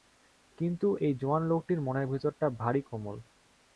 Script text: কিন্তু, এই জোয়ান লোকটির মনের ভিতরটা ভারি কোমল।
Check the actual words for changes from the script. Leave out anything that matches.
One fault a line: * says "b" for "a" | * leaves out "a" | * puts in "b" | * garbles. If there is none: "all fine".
all fine